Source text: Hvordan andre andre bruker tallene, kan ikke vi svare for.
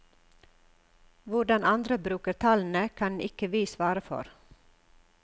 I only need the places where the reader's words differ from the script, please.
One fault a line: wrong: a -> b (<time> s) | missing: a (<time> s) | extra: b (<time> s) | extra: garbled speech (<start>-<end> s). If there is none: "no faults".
missing: andre (2.0 s)